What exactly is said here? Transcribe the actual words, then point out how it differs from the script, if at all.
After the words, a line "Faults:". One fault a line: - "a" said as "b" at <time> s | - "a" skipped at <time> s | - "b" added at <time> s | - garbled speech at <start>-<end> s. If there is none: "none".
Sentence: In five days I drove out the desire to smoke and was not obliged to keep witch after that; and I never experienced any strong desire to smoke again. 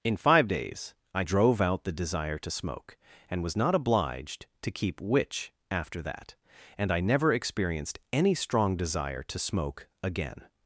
In five days I drove out the desire to smoke and was not obliged to keep witch after that; and I never experienced any strong desire to smoke again.
Faults:
none